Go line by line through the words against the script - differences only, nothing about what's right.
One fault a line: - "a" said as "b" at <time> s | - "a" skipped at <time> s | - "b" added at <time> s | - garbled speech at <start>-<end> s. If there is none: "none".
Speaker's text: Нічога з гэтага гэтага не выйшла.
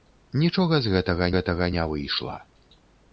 none